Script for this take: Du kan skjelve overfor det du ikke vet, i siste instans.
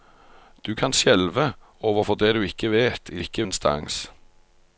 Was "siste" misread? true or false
true